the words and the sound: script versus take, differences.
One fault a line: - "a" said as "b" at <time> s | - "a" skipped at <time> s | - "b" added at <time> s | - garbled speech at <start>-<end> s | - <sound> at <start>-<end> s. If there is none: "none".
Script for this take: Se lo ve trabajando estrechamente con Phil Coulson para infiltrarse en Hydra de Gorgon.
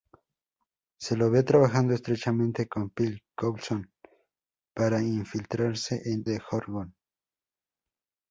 - "Hydra" skipped at 6.2 s